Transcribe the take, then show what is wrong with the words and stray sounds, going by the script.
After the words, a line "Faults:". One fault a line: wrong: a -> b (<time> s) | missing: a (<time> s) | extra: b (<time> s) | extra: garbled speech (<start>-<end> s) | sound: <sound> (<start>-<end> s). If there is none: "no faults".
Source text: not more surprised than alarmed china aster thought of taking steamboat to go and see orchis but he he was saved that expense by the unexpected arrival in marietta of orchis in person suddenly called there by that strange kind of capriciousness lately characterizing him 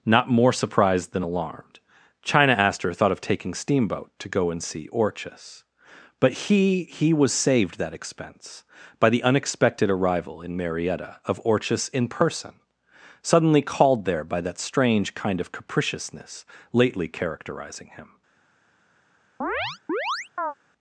not more surprised than alarmed china aster thought of taking steamboat to go and see orchis but he he was saved that expense by the unexpected arrival in marietta of orchis in person suddenly called there by that strange kind of capriciousness lately characterizing him
Faults:
sound: chirp (19.4-20.5 s)